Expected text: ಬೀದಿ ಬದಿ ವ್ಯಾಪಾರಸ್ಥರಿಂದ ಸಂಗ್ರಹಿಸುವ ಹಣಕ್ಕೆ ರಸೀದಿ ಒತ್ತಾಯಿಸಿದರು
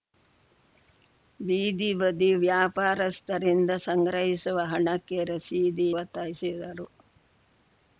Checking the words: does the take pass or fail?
pass